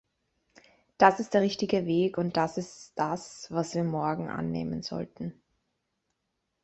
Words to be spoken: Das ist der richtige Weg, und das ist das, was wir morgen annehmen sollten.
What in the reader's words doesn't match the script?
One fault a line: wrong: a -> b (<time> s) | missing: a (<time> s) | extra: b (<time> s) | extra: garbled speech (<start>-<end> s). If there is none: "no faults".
no faults